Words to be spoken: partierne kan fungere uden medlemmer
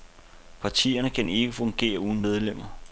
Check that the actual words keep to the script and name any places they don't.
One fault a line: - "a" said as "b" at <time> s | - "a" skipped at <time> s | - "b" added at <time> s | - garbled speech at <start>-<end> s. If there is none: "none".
- "ikke" added at 1.3 s